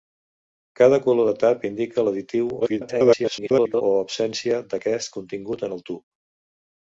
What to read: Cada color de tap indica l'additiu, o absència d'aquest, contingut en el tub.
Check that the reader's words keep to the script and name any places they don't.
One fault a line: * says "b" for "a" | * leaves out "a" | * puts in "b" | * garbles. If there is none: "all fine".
* garbles